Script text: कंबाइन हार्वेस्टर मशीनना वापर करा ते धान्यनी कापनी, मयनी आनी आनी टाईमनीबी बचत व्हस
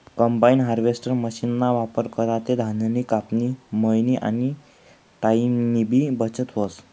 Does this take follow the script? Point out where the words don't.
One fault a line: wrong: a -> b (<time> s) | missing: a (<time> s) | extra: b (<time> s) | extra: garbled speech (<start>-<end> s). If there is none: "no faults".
missing: आनी (4.5 s)